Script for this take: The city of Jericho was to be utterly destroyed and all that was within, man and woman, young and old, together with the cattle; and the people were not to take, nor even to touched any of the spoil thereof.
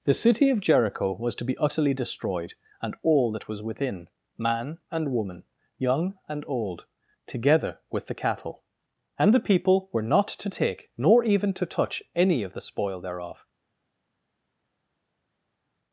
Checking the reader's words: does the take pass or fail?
fail